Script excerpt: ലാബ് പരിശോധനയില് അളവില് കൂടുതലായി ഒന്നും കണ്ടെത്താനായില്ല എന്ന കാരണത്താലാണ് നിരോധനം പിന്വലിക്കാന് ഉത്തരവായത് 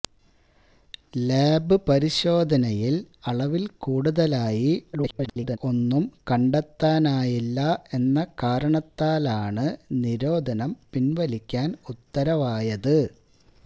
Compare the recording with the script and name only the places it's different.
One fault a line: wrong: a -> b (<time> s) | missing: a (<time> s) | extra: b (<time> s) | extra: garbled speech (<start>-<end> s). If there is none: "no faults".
extra: garbled speech (4.9-5.6 s)